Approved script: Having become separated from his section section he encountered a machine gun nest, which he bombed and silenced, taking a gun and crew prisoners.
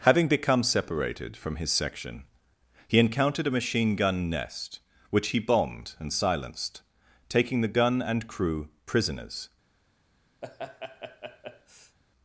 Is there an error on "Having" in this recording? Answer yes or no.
no